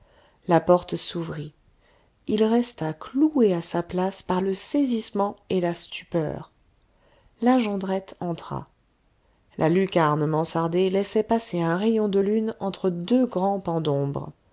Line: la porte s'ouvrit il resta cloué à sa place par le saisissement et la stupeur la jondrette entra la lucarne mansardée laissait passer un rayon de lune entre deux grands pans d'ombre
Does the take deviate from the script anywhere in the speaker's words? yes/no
no